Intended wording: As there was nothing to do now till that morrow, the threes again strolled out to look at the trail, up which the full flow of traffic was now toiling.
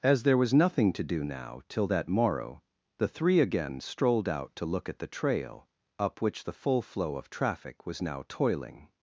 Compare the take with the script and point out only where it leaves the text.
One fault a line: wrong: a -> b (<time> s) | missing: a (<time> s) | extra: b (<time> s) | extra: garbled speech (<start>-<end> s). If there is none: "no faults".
wrong: threes -> three (3.1 s)